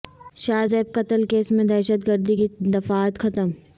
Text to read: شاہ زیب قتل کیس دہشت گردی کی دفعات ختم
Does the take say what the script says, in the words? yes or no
no